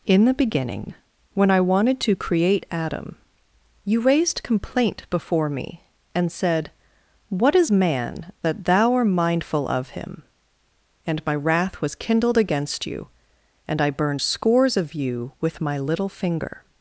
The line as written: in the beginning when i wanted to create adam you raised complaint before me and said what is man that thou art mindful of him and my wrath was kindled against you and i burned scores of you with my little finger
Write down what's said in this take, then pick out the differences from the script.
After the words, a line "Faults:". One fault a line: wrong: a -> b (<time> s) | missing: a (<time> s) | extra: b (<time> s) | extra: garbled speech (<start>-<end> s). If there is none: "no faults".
in the beginning when i wanted to create adam you raised complaint before me and said what is man that thou art mindful of him and my wrath was kindled against you and i burned scores of you with my little finger
Faults:
no faults